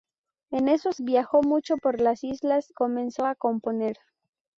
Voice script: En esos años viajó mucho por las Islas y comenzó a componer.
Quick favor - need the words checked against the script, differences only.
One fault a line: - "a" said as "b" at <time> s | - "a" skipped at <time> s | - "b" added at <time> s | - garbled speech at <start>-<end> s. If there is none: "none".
- "años" skipped at 1.0 s
- "y" skipped at 2.7 s